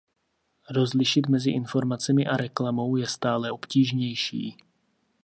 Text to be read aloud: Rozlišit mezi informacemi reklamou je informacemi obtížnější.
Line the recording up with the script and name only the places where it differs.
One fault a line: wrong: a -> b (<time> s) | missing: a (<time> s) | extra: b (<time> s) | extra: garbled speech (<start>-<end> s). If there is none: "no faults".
extra: a (2.3 s)
wrong: informacemi -> stále (3.1 s)